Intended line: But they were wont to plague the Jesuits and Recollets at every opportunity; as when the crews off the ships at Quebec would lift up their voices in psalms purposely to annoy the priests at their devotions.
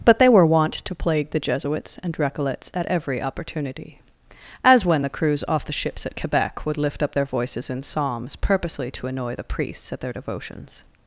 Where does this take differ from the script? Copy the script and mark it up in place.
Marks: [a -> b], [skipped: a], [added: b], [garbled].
But they were wont to plague the Jesuits and Recollets at every opportunity; as when the crews off the ships at Quebec would lift up their voices in psalms purposely to annoy the priests at their devotions.